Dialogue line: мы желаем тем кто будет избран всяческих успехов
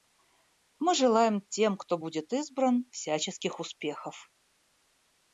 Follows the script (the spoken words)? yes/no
yes